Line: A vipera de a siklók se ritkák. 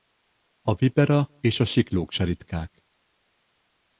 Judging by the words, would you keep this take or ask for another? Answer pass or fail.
fail